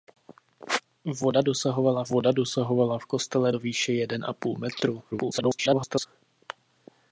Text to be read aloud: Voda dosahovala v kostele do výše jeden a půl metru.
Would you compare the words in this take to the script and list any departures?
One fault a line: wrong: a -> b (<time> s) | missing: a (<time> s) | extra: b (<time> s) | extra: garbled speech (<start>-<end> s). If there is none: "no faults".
extra: voda dosahovala (2.1 s)
extra: garbled speech (5.1-6.1 s)